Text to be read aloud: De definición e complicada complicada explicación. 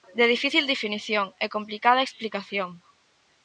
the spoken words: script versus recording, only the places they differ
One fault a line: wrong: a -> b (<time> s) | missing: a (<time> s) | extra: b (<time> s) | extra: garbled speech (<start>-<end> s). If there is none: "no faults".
extra: difícil (0.3 s)
missing: complicada (2.0 s)